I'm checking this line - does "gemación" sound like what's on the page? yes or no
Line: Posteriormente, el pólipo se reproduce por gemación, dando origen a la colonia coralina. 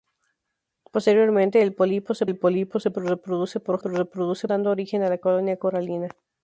no